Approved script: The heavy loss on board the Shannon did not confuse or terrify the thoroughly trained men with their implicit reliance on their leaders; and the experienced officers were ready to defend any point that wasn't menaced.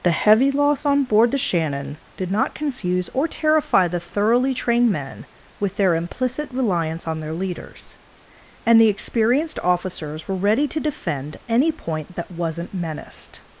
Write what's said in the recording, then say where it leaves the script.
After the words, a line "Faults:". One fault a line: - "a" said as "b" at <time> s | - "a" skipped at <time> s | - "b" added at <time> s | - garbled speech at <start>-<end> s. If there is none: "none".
The heavy loss on board the Shannon did not confuse or terrify the thoroughly trained men with their implicit reliance on their leaders; and the experienced officers were ready to defend any point that wasn't menaced.
Faults:
none